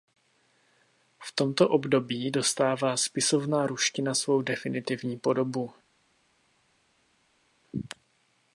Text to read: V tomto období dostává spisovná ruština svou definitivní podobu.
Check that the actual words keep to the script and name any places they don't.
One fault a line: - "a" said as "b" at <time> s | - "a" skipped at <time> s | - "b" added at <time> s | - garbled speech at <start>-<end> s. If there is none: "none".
none